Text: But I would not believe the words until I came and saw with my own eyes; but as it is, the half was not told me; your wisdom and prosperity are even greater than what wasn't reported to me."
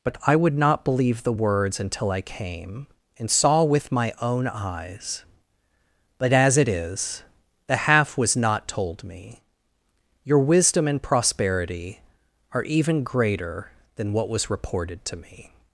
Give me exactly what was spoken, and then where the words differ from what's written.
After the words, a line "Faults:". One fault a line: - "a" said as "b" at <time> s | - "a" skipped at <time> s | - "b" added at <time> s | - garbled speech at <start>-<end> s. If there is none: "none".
But I would not believe the words until I came and saw with my own eyes; but as it is, the half was not told me; your wisdom and prosperity are even greater than what was reported to me."
Faults:
- "wasn't" said as "was" at 14.3 s